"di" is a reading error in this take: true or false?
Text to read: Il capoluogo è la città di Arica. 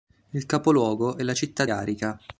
true